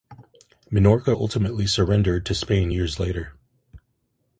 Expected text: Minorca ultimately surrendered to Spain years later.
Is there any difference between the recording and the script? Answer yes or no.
no